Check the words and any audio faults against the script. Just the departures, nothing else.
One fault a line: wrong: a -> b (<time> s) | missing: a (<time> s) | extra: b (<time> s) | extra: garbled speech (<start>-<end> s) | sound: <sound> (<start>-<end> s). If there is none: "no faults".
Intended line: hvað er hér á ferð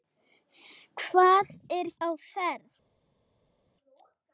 missing: hér (1.9 s)